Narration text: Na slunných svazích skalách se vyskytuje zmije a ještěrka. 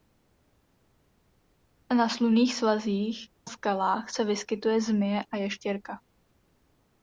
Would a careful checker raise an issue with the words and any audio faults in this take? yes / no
no